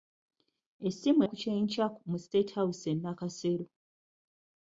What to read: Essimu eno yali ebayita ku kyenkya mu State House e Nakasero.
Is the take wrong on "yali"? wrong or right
wrong